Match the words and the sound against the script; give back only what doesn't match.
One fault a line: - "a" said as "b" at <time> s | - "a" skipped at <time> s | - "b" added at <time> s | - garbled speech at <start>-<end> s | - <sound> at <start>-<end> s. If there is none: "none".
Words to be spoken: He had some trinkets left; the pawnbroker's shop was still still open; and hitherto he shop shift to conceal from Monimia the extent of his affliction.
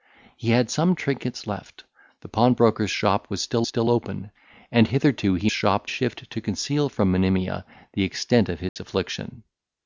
- dropout at 8.7-8.8 s